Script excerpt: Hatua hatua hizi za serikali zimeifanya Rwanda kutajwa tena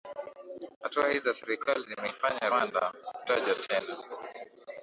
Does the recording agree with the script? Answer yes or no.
no